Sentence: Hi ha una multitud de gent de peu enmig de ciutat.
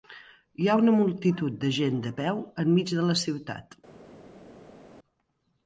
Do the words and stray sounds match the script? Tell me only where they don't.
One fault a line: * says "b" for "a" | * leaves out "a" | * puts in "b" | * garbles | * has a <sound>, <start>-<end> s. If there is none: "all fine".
* puts in "la"